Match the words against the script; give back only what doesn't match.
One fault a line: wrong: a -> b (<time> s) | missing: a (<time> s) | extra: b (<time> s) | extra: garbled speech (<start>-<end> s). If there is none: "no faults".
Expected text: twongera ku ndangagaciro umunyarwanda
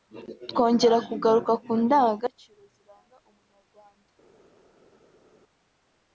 extra: kugaruka (1.1 s)
extra: ziranga (2.7 s)